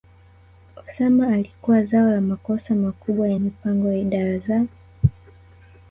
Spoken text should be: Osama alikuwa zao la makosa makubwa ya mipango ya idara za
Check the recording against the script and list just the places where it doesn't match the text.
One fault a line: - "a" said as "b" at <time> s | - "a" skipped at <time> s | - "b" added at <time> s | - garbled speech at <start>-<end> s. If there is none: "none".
none